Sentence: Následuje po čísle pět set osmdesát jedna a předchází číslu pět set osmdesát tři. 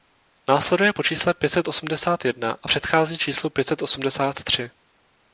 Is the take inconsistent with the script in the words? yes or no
no